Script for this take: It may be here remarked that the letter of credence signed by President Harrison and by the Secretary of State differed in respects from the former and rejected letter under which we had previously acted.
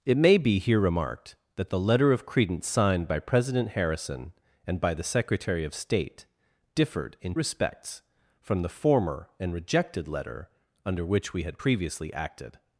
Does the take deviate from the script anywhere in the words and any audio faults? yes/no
no